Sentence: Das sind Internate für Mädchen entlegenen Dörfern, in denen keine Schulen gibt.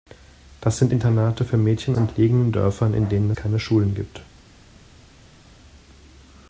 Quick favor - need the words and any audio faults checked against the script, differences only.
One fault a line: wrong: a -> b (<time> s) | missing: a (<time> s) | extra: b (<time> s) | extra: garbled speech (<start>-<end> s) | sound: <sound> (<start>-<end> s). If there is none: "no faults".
no faults